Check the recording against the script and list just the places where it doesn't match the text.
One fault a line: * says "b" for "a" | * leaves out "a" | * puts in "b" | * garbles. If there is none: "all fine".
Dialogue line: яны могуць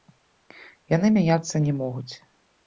* puts in "мяняцца не"